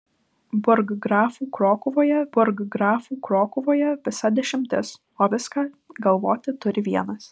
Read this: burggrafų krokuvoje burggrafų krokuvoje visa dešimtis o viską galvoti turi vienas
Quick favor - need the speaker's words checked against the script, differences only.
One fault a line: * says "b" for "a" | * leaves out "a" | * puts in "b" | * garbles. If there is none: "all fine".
all fine